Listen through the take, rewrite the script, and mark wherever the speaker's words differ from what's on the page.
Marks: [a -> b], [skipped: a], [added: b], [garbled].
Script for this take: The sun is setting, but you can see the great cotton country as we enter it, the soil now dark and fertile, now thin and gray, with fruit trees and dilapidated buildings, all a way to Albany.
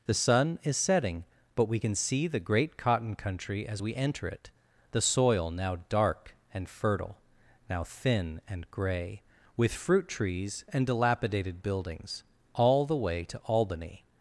The sun is setting, but [you -> we] can see the great cotton country as we enter it, the soil now dark and fertile, now thin and gray, with fruit trees and dilapidated buildings, all [a -> the] way to Albany.